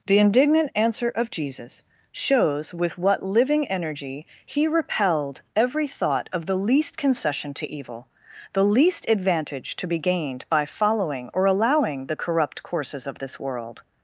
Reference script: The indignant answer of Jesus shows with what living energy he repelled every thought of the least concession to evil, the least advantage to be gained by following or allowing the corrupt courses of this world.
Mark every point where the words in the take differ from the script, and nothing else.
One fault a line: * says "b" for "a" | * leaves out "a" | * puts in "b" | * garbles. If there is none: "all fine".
all fine